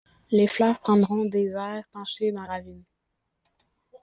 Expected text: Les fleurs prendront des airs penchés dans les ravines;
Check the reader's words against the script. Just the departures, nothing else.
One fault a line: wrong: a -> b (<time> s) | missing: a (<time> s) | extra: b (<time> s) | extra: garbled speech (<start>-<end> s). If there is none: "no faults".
missing: les (2.5 s)